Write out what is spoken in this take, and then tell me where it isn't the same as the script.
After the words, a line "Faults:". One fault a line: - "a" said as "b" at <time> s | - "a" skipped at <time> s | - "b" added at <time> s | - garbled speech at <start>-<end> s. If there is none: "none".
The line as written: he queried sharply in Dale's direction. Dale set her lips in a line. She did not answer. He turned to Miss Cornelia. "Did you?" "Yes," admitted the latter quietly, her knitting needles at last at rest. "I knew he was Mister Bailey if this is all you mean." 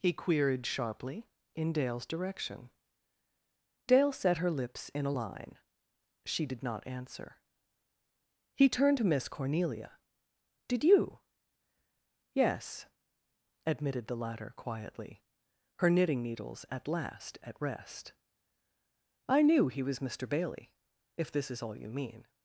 he queried sharply in Dale's direction. Dale set her lips in a line. She did not answer. He turned to Miss Cornelia. "Did you?" "Yes," admitted the latter quietly, her knitting needles at last at rest. "I knew he was Mister Bailey if this is all you mean."
Faults:
none